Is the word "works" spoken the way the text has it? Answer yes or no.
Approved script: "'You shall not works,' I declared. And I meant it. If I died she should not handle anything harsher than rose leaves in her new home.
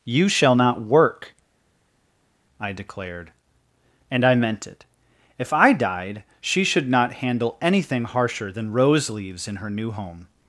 no